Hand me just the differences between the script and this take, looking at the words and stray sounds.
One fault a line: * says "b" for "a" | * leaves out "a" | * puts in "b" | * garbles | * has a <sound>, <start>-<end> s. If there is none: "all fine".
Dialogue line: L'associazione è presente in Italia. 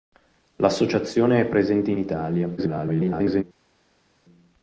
* garbles